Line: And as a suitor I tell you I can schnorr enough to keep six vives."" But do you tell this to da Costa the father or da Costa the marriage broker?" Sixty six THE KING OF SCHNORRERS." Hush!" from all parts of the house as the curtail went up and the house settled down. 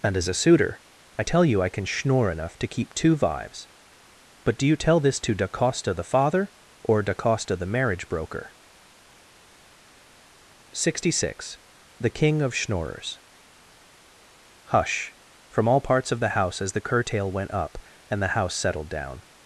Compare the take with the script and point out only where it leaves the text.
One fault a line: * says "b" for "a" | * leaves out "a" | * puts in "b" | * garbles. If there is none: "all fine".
* says "two" for "six"